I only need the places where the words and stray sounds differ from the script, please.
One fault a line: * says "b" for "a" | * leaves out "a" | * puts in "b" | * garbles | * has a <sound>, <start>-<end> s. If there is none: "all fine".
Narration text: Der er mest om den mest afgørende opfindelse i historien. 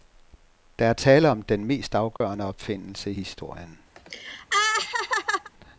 * says "tale" for "mest"
* has a dropout, 2.2-2.2 s
* has a laugh, 4.0-5.5 s